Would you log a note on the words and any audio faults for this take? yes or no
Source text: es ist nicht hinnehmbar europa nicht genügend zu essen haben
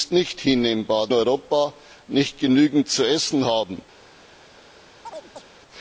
yes